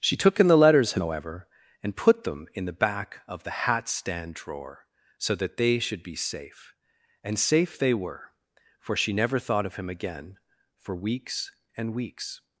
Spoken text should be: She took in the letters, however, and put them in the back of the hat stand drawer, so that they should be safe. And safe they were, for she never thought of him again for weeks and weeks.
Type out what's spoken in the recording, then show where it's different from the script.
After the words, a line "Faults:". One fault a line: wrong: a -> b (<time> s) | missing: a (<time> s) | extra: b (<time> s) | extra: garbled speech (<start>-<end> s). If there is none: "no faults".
She took in the letters, however, and put them in the back of the hat stand drawer, so that they should be safe. And safe they were, for she never thought of him again for weeks and weeks.
Faults:
no faults